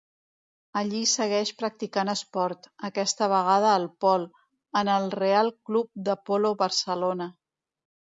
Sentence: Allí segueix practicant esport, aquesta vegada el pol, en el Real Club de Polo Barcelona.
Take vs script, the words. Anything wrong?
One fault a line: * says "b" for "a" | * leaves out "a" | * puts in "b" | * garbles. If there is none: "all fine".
all fine